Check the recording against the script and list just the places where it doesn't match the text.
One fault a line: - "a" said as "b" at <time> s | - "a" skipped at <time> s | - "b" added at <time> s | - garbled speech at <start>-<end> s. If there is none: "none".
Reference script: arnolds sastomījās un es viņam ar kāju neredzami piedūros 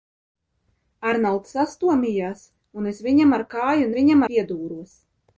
- "neredzami" said as "viņam" at 4.0 s